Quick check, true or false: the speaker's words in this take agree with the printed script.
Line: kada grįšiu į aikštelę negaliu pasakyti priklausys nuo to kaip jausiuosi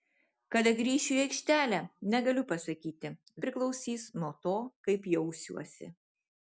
true